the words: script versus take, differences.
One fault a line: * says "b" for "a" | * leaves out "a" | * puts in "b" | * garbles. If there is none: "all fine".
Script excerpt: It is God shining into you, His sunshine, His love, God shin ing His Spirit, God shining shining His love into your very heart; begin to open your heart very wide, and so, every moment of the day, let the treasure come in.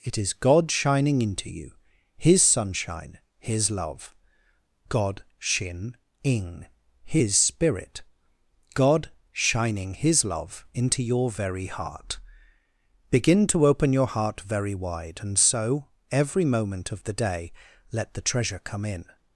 * leaves out "shining"